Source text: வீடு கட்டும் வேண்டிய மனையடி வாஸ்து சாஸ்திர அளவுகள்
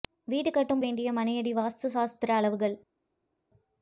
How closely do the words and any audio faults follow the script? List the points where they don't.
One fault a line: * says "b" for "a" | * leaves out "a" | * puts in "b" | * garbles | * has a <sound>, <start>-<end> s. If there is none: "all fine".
all fine